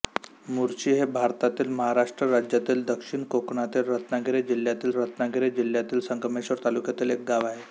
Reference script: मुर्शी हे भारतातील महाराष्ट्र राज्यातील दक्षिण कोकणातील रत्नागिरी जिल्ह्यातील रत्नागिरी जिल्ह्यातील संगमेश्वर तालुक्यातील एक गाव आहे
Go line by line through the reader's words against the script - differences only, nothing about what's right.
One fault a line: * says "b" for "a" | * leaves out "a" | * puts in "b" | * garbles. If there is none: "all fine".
all fine